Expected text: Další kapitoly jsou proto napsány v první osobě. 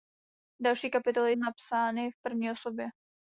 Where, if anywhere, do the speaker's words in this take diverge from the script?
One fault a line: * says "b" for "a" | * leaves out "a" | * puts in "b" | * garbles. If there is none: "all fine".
* leaves out "jsou proto"